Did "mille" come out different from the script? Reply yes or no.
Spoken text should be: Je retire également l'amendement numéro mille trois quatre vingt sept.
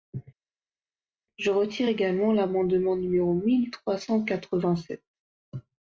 no